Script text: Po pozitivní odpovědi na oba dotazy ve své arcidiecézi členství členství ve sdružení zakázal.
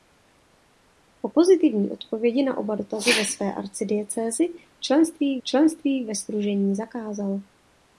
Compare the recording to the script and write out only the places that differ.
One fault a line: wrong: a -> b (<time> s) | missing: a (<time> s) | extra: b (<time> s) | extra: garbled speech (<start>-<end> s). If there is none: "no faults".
no faults